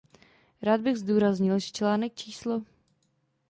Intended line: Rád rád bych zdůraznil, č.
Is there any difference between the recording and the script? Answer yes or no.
yes